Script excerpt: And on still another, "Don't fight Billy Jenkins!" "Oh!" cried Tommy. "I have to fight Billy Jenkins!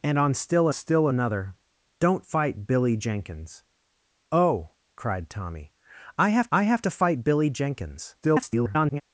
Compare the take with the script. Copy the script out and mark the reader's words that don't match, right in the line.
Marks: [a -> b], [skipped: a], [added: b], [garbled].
And on still [added: still] another, "Don't fight Billy Jenkins!" "Oh!" cried Tommy. "I have [added: I have] to fight Billy Jenkins! [garbled]